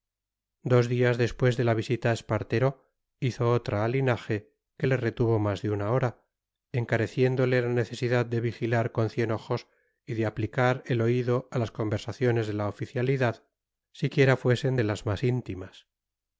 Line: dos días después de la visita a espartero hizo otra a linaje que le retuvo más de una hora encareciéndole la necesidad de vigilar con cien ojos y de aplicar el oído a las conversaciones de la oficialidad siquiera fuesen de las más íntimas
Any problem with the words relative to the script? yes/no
no